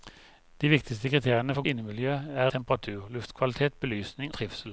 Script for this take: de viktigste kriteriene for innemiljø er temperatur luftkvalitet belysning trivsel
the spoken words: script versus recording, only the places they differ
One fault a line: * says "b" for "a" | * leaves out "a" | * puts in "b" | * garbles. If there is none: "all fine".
all fine